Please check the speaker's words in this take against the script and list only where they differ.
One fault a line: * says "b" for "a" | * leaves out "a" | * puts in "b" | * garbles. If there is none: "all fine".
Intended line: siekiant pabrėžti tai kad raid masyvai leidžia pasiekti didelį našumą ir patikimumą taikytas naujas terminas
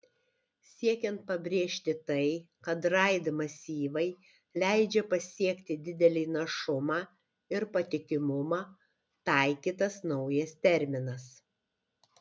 all fine